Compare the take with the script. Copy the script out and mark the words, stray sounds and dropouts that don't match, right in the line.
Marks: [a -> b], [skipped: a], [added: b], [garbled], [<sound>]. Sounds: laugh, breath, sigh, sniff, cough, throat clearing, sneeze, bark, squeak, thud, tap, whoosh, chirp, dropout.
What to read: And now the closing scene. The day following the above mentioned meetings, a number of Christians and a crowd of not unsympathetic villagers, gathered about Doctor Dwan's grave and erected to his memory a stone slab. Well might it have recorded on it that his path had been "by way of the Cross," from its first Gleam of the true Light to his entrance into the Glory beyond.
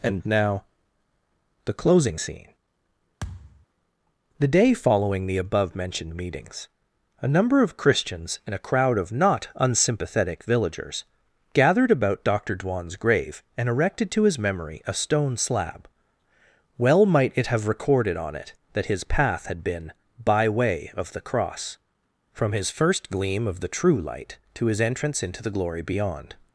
And now the closing scene. [thud] The day following the above mentioned meetings, a number of Christians and a crowd of not unsympathetic villagers, gathered about Doctor Dwan's grave and erected to his memory a stone slab. Well might it have recorded on it that his path had been "by way of the Cross," from [its -> his] first Gleam of the true Light to his entrance into the Glory beyond.